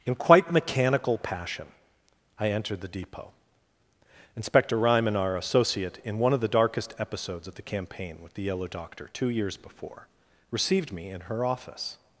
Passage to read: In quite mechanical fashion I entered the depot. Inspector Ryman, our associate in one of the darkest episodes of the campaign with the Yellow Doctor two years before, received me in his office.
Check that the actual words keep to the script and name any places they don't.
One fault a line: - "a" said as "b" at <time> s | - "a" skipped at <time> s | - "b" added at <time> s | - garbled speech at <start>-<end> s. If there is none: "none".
- "fashion" said as "passion" at 1.2 s
- "his" said as "her" at 11.2 s